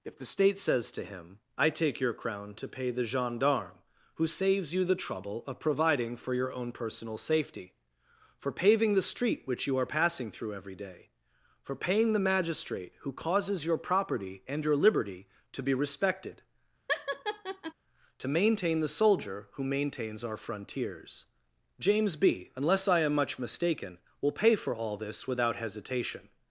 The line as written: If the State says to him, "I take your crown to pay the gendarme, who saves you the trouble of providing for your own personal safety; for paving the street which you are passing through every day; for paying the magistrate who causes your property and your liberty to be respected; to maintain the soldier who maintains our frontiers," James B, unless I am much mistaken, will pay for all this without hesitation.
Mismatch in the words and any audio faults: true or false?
true